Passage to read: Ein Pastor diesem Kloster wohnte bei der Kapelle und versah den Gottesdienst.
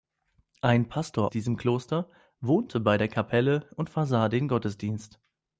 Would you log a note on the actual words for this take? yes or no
no